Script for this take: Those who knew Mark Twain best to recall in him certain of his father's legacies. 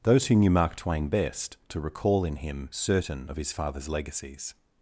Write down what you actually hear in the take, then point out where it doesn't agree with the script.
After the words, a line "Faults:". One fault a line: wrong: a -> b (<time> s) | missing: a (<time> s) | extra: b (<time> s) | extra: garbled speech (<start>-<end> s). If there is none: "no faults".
Those who knew Mark Twain best to recall in him certain of his father's legacies.
Faults:
no faults